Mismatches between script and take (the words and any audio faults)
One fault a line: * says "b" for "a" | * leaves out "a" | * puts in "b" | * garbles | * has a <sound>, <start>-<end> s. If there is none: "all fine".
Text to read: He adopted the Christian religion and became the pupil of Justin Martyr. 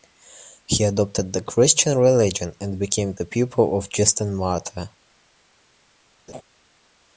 * has a laugh, 6.3-6.4 s